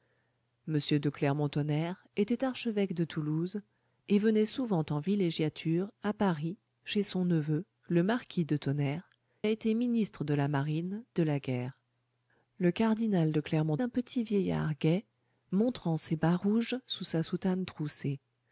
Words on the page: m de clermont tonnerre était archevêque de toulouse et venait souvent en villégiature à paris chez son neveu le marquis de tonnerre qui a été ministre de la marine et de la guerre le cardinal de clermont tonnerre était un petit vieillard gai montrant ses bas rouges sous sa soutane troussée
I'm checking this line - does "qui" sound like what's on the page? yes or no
no